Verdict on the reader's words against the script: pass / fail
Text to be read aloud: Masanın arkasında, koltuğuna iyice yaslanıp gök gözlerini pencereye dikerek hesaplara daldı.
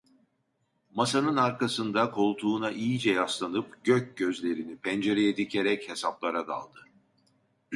pass